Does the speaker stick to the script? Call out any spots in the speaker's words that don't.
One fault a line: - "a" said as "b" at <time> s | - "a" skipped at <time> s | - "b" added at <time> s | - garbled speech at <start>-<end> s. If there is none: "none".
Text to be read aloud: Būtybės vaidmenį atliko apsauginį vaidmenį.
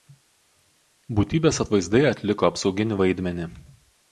- "vaidmenį" said as "atvaizdai" at 1.6 s